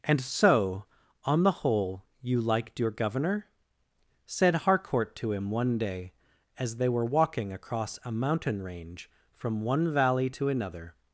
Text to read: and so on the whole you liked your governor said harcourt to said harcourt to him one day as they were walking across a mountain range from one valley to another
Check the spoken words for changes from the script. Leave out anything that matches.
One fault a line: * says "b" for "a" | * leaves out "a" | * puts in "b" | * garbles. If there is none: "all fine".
* leaves out "said harcourt to"